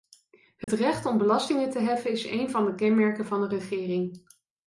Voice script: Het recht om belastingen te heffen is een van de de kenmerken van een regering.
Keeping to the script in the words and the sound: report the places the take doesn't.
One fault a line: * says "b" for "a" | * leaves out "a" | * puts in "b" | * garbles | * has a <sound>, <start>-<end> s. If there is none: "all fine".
* has a dropout, 0.6-0.7 s
* leaves out "de"